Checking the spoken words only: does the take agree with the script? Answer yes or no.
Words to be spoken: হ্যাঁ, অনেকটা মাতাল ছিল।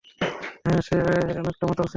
no